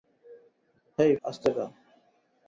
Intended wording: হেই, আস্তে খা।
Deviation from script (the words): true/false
false